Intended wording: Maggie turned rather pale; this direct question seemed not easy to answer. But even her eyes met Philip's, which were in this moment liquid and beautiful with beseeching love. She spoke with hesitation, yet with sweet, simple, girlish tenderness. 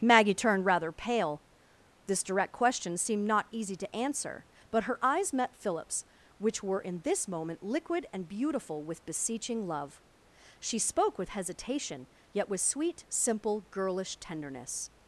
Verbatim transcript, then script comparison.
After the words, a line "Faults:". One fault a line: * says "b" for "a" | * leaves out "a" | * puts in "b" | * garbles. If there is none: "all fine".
Maggie turned rather pale; this direct question seemed not easy to answer. But her eyes met Philip's, which were in this moment liquid and beautiful with beseeching love. She spoke with hesitation, yet with sweet, simple, girlish tenderness.
Faults:
* leaves out "even"